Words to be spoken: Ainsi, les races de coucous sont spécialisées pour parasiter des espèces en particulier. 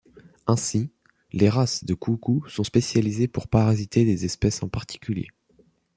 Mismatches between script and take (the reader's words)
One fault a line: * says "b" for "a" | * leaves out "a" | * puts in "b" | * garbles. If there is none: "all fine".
all fine